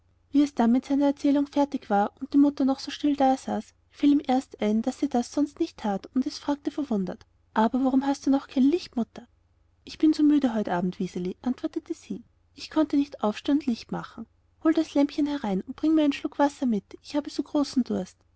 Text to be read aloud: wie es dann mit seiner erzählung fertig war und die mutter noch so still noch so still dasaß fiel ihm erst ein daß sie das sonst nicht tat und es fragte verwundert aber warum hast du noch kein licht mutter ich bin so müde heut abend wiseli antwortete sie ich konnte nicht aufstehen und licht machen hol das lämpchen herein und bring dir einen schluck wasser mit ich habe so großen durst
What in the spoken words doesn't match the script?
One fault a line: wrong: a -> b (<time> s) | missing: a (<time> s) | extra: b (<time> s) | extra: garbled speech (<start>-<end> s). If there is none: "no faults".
missing: noch so still (3.1 s)
wrong: dir -> mir (15.9 s)